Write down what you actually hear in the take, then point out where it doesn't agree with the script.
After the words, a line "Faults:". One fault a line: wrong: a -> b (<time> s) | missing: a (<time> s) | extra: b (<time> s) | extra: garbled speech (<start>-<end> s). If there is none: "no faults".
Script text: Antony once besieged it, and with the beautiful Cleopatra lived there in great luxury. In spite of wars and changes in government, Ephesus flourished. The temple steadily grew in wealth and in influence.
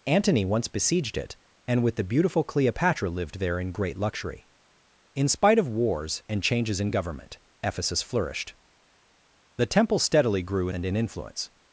Antony once besieged it, and with the beautiful Cleopatra lived there in great luxury. In spite of wars and changes in government, Ephesus flourished. The temple steadily grew and in influence.
Faults:
missing: in wealth (10.7 s)